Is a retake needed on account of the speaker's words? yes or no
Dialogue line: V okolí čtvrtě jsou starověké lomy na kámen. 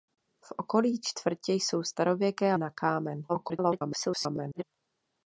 yes